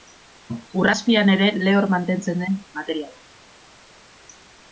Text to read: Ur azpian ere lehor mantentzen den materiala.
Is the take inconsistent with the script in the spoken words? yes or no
no